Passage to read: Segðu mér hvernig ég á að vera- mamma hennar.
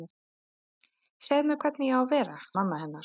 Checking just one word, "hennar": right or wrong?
right